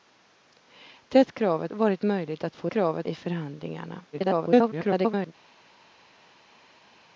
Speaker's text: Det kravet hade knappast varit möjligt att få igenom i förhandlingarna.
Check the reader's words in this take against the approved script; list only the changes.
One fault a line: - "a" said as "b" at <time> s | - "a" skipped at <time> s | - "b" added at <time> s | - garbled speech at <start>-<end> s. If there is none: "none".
- "hade knappast" skipped at 1.7 s
- "igenom" said as "kravet" at 2.7 s
- garbled speech at 4.1-5.3 s